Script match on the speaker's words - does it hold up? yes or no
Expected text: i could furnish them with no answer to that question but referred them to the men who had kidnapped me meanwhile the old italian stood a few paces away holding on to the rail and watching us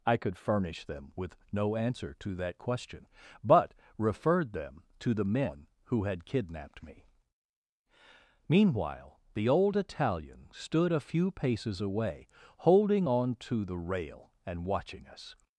yes